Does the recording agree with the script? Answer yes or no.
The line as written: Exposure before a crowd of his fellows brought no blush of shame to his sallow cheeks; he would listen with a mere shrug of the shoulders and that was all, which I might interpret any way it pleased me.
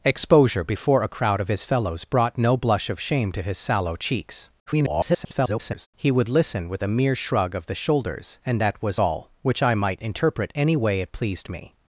no